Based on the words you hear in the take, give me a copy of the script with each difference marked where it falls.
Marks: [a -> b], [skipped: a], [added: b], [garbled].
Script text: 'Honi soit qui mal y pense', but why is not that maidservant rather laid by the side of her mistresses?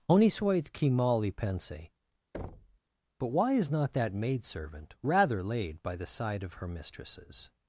'Honi soit qui mal y pense', but why is not that maidservant rather laid by the side of her mistresses?